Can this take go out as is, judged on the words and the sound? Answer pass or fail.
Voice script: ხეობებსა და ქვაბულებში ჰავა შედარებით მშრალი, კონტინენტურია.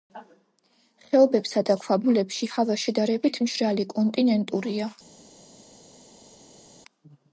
pass